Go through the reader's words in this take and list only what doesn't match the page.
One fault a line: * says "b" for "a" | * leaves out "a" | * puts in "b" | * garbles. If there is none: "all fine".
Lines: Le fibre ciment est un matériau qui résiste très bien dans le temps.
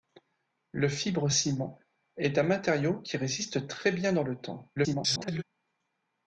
* garbles